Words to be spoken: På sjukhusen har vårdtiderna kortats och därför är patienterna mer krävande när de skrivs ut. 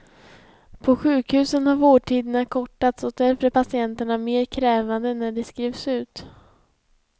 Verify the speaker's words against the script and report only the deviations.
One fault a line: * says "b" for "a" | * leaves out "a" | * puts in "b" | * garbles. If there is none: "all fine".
all fine